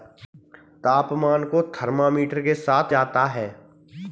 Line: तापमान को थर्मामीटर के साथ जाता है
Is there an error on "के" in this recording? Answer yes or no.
no